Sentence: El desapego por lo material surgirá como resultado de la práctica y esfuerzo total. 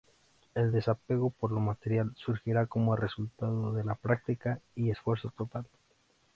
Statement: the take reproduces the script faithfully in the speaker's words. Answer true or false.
true